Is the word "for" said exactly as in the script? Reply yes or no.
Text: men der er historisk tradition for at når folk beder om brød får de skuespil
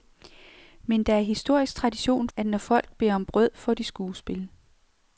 no